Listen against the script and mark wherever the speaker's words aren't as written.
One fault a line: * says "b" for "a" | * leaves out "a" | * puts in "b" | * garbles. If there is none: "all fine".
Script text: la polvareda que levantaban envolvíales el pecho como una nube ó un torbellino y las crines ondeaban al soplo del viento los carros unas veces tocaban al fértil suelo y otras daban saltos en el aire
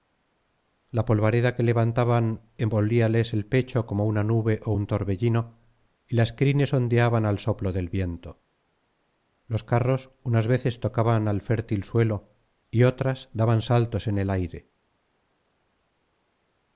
all fine